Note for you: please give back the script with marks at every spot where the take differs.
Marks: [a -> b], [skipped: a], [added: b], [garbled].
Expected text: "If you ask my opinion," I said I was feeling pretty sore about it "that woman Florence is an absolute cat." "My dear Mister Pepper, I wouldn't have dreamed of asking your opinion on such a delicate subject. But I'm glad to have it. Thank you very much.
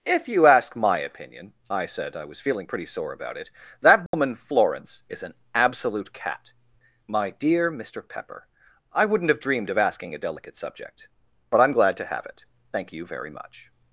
"If you ask my opinion," I said I was feeling pretty sore about it "that woman Florence is an absolute cat." "My dear Mister Pepper, I wouldn't have dreamed of asking [skipped: your opinion on such] a delicate subject. But I'm glad to have it. Thank you very much.